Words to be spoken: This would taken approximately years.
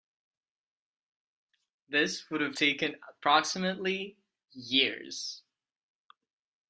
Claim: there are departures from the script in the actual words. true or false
true